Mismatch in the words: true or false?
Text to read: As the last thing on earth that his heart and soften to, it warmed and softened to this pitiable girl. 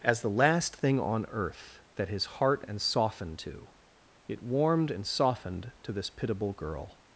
false